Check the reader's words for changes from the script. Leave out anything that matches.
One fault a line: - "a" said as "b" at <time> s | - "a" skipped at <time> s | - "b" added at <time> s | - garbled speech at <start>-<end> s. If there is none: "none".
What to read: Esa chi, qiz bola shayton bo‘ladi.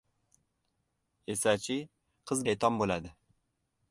- "bola" skipped at 2.4 s